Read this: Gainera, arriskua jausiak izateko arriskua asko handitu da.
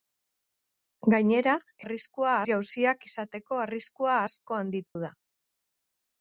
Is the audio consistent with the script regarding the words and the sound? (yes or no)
no